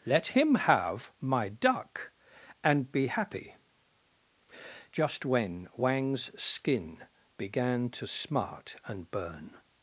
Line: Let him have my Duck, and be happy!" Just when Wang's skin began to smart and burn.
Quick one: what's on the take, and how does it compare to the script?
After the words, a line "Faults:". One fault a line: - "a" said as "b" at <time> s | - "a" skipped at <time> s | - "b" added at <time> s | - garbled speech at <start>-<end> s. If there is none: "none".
Let him have my Duck, and be happy!" Just when Wang's skin began to smart and burn.
Faults:
none